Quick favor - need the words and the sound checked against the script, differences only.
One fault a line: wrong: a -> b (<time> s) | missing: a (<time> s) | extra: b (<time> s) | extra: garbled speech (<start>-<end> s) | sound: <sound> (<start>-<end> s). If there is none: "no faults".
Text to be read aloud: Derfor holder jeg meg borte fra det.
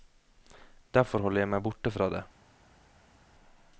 no faults